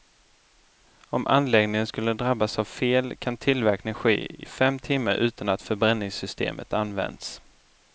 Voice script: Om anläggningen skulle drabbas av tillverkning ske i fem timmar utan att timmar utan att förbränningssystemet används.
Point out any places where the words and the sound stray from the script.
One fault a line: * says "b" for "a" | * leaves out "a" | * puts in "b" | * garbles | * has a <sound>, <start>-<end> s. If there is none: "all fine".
* puts in "fel kan"
* leaves out "timmar utan att"